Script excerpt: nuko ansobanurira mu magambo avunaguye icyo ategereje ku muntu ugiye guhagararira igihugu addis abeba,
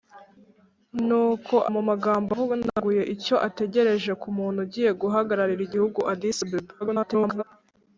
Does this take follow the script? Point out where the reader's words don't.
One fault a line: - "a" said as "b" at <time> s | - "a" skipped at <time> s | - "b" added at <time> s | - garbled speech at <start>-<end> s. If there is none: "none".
- "ansobanurira" skipped at 1.6 s
- garbled speech at 6.8-7.4 s